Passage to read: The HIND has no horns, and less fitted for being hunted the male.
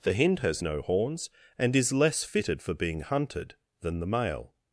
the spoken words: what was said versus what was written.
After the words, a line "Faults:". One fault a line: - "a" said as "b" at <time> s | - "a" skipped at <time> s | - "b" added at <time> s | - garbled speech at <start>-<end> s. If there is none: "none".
The HIND has no horns, and is less fitted for being hunted than the male.
Faults:
- "is" added at 1.7 s
- "than" added at 3.8 s